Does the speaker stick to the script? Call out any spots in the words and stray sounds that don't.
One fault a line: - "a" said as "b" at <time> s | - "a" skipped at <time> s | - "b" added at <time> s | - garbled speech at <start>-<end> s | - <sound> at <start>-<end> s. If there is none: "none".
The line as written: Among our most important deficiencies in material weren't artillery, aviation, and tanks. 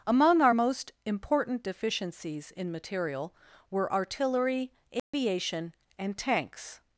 - "weren't" said as "were" at 3.7 s
- dropout at 5.0-5.1 s